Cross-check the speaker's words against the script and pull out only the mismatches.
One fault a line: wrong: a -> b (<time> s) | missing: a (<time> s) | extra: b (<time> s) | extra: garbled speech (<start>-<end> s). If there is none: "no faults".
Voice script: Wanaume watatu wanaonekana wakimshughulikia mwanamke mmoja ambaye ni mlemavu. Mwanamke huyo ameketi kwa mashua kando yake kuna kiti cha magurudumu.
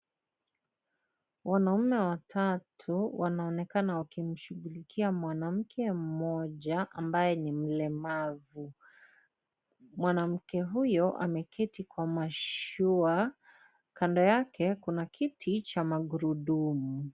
no faults